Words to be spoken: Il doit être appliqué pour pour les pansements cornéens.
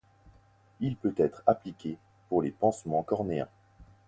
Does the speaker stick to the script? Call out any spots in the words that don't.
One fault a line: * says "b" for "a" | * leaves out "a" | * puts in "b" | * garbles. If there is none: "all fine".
* says "peut" for "doit"
* leaves out "pour"